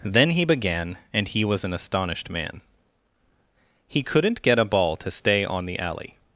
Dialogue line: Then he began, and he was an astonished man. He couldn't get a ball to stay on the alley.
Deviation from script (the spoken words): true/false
false